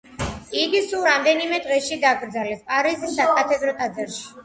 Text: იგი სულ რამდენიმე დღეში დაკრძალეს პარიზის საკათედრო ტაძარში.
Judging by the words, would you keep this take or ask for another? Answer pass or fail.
pass